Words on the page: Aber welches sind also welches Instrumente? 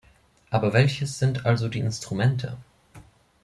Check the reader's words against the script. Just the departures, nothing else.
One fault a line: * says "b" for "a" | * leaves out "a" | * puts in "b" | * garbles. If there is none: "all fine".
* says "die" for "welches"